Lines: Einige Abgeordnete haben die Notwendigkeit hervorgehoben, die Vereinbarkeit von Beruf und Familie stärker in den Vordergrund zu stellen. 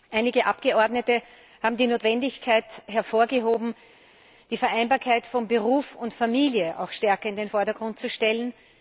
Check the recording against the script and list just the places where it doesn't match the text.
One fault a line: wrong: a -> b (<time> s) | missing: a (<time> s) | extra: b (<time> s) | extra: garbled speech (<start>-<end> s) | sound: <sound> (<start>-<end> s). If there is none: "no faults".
no faults